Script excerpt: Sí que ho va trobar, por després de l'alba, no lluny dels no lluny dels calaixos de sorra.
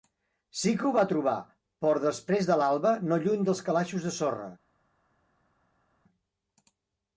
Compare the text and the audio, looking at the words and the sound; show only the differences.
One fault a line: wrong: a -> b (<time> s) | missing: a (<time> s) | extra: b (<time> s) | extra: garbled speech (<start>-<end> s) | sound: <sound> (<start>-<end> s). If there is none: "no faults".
missing: no lluny dels (3.6 s)